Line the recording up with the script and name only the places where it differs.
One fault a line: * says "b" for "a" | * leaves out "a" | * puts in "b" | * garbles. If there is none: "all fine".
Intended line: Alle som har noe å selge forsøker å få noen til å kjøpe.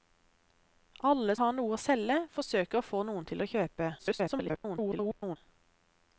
* leaves out "som"
* garbles